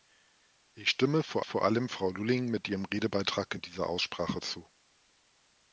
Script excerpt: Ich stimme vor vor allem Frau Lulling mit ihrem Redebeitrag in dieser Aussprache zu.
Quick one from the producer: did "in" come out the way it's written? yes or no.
yes